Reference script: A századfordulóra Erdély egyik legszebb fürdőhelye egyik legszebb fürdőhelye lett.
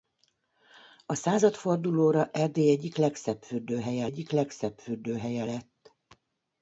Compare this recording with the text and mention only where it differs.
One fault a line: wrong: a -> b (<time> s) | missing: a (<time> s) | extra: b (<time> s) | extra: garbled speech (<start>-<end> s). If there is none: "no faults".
no faults